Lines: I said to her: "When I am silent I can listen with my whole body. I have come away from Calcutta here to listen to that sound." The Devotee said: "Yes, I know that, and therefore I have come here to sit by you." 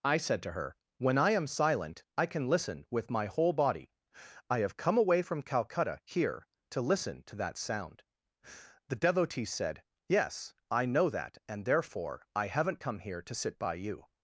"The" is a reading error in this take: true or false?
false